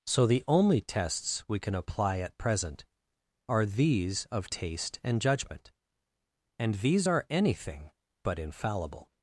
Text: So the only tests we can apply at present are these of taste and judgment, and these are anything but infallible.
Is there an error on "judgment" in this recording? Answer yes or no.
no